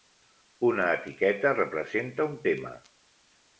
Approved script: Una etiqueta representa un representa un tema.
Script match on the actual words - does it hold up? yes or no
no